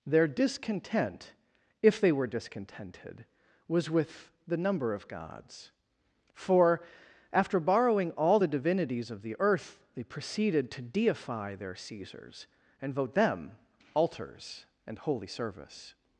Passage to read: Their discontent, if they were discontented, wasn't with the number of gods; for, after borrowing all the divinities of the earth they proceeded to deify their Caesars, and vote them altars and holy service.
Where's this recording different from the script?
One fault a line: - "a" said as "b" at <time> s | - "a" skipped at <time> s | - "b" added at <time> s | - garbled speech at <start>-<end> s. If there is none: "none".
- "wasn't" said as "was" at 3.7 s